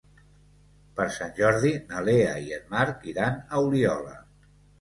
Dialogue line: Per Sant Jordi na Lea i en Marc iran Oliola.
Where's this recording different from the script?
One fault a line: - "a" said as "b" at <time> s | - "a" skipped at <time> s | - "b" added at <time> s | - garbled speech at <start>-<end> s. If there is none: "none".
- "a" added at 3.4 s